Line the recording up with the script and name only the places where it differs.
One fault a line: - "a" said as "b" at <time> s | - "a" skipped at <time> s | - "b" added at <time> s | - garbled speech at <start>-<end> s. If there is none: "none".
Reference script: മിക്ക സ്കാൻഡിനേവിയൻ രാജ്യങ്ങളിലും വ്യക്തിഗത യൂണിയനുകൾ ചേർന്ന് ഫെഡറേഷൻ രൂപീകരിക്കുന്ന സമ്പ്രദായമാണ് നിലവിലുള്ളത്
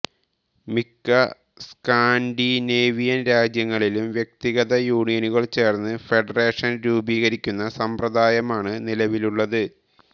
none